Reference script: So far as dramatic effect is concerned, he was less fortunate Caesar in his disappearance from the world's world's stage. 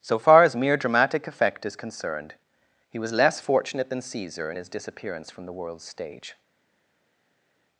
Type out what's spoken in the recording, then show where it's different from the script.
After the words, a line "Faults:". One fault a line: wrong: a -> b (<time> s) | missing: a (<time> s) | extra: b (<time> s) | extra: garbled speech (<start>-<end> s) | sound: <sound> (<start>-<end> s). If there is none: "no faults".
So far as mere dramatic effect is concerned, he was less fortunate than Caesar in his disappearance from the world's stage.
Faults:
extra: mere (0.6 s)
extra: than (3.9 s)
missing: world's (5.8 s)